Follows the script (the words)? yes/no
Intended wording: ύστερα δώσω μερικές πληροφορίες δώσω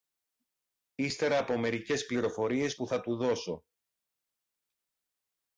no